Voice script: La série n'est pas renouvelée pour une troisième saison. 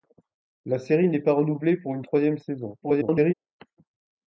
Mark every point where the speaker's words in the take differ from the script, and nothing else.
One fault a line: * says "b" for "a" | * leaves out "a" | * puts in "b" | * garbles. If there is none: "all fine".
* garbles